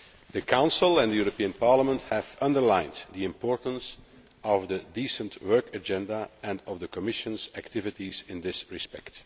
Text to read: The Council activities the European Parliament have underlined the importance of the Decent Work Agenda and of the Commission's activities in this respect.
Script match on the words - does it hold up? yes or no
no